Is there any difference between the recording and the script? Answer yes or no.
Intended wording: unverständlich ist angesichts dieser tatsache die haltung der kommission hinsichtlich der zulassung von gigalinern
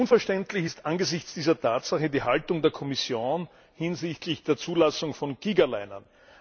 no